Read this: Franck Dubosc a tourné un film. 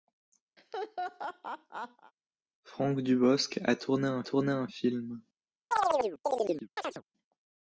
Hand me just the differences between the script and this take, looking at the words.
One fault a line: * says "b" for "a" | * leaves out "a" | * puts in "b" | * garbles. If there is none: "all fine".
* puts in "tourné un"